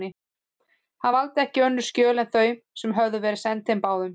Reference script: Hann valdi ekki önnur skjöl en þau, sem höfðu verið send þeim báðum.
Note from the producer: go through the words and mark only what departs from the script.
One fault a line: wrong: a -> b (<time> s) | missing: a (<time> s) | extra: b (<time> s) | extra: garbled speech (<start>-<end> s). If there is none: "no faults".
no faults